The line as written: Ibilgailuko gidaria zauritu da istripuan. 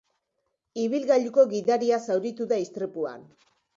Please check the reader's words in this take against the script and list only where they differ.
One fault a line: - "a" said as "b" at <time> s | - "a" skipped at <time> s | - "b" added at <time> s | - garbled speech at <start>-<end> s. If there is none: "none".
none